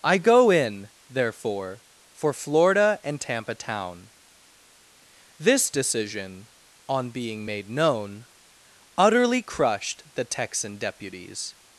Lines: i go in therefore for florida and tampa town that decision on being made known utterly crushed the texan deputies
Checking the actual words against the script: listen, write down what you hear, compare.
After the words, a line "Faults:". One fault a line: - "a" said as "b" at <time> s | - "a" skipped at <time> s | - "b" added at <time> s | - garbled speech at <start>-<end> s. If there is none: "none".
i go in therefore for florida and tampa town this decision on being made known utterly crushed the texan deputies
Faults:
- "that" said as "this" at 5.4 s